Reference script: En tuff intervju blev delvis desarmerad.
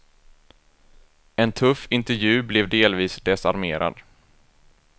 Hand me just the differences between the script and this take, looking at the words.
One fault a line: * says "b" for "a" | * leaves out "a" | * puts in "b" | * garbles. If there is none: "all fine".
all fine